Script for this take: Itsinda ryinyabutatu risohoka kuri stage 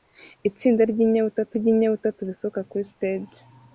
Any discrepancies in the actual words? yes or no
yes